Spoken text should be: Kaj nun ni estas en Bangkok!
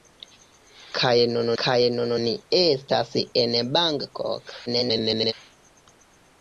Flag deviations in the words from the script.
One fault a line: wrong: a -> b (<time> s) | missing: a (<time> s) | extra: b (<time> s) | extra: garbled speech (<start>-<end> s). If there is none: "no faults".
extra: kaj nun (1.6 s)
extra: garbled speech (4.7-5.3 s)